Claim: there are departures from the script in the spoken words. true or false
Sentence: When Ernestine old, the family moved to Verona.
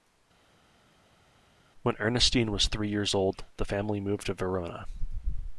true